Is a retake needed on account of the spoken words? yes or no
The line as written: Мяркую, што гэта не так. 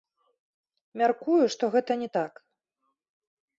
no